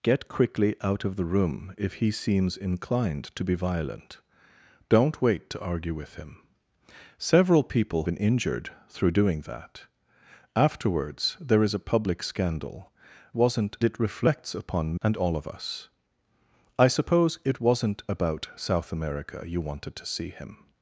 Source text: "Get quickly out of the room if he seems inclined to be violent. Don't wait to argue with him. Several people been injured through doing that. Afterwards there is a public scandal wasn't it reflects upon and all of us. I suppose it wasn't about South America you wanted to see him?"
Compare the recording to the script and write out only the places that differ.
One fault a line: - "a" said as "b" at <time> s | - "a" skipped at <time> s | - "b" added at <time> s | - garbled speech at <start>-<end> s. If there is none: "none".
none